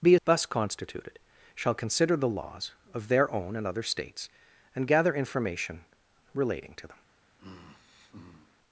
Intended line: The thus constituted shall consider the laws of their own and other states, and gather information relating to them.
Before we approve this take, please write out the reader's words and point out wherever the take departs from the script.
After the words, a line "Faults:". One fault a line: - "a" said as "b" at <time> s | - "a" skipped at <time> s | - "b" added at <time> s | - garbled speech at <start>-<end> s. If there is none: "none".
The thus constituted shall consider the laws of their own and other states, and gather information relating to them.
Faults:
none